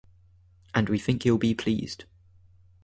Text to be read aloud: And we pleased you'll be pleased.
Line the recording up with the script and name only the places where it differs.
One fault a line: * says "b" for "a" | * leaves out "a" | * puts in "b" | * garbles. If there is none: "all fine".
* says "think" for "pleased"